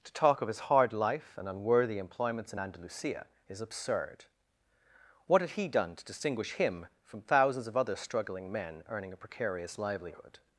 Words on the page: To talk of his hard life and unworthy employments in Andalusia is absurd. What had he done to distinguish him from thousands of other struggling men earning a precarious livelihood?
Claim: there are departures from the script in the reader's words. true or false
false